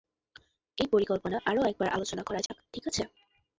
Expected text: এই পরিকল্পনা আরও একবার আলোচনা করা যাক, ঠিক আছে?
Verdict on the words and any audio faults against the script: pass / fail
fail